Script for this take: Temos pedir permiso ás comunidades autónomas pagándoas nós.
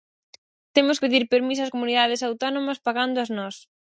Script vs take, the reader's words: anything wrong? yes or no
no